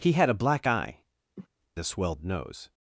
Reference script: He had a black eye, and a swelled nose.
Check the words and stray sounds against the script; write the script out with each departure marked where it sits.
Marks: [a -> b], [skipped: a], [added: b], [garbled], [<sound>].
He had a black eye, [skipped: and] [cough] a swelled nose.